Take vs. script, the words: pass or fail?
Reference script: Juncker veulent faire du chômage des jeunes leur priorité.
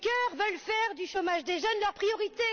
pass